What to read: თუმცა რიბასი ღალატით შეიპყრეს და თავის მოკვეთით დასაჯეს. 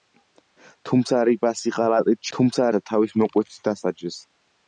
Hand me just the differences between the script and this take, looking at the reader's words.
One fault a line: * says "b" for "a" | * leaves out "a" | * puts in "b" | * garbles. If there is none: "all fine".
* says "თუმცა" for "შეიპყრეს"